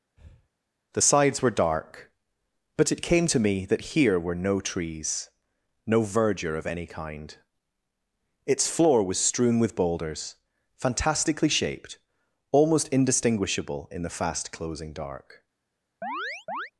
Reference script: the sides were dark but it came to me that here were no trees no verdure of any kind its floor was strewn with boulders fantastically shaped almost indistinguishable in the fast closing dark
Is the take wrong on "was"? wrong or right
right